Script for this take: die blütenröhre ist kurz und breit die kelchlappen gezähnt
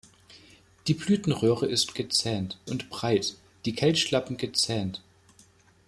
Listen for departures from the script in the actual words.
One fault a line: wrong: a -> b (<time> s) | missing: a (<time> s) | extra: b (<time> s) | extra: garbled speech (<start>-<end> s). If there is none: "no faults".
wrong: kurz -> gezähnt (1.9 s)